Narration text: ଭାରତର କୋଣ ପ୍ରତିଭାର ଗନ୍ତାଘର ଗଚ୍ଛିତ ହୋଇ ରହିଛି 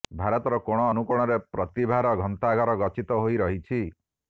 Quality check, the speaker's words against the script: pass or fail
fail